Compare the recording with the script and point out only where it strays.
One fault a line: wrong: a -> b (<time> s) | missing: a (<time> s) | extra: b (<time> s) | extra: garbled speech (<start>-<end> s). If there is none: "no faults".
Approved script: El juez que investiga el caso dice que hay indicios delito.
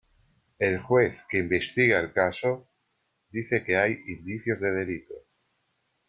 extra: de (4.6 s)